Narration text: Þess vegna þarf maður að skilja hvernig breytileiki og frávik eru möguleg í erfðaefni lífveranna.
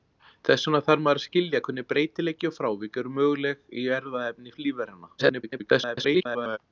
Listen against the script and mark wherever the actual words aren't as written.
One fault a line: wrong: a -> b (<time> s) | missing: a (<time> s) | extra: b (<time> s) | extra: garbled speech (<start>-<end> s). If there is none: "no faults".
extra: garbled speech (5.2-6.6 s)